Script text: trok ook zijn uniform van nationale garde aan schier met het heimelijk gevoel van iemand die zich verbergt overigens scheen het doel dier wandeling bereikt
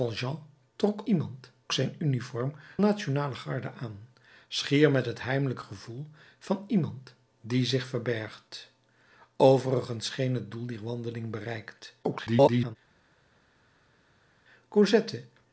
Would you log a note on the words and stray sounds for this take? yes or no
yes